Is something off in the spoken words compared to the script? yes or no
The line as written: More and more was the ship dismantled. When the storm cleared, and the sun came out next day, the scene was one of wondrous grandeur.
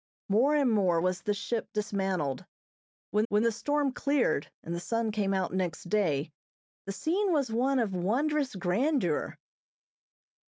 yes